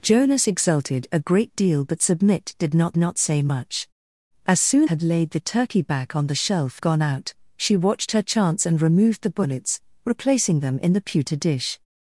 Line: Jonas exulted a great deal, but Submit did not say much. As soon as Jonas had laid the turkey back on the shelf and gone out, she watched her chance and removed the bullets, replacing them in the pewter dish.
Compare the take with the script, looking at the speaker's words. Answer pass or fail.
fail